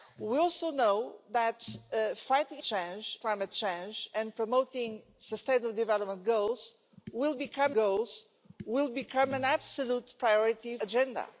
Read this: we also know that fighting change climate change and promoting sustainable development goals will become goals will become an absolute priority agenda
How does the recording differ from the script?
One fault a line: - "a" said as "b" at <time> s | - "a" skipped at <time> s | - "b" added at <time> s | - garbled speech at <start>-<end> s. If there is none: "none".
none